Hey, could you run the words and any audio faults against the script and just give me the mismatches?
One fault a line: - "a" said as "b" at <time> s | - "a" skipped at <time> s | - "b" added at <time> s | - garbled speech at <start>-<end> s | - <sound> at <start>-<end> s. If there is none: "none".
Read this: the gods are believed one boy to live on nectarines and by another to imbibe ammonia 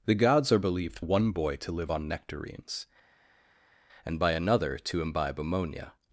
none